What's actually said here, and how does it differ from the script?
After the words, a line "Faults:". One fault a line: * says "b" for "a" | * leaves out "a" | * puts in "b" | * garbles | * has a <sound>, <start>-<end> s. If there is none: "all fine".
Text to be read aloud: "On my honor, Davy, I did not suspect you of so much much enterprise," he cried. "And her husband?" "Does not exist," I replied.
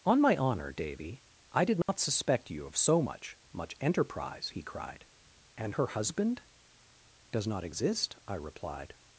"On my honor, Davy, I did not suspect you of so much much enterprise," he cried. "And her husband?" "Does not exist," I replied.
Faults:
* has a dropout, 1.8-1.9 s